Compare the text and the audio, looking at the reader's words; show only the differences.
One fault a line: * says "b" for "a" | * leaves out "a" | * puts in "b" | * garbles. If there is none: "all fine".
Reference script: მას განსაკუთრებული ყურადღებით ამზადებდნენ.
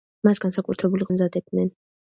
* leaves out "ყურადღებით"